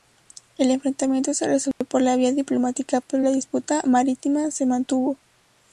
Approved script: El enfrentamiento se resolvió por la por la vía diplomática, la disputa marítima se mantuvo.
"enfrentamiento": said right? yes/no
yes